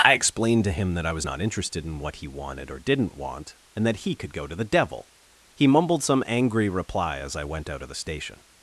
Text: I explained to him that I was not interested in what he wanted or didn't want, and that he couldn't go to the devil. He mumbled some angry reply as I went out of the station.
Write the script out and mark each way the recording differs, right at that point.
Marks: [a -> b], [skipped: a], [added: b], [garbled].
I explained to him that I was not interested in what he wanted or didn't want, and that he [couldn't -> could] go to the devil. He mumbled some angry reply as I went out of the station.